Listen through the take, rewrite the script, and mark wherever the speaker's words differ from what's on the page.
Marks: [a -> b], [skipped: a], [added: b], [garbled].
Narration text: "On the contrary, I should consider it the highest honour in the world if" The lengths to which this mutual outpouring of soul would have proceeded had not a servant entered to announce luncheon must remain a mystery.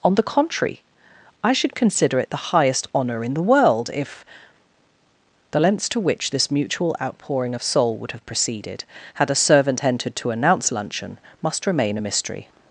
"On the contrary, I should consider it the highest honour in the world if" The lengths to which this mutual outpouring of soul would have proceeded had [skipped: not] a servant entered to announce luncheon must remain a mystery.